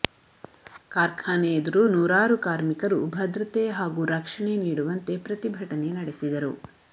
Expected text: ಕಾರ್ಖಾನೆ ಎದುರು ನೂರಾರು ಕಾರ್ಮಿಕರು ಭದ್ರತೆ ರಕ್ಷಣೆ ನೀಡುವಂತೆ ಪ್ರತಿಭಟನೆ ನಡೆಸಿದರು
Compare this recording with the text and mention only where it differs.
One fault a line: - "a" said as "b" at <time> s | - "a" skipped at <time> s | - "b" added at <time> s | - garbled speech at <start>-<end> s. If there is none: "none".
- "ಹಾಗೂ" added at 3.8 s